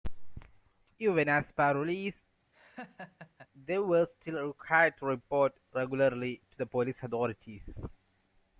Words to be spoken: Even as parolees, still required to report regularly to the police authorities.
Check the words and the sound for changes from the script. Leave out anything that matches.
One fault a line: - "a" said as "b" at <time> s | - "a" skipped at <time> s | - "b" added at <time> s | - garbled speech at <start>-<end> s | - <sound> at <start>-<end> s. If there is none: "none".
- laugh at 2.5-3.5 s
- "they were" added at 3.7 s